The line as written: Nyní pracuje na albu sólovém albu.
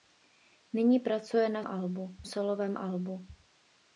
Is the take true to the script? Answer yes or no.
yes